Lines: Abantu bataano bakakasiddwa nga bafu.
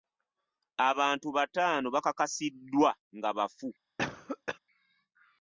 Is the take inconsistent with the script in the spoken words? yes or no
no